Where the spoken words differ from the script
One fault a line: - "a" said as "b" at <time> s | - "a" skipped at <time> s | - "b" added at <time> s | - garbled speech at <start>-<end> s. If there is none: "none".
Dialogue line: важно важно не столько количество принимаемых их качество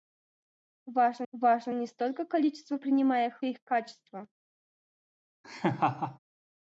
none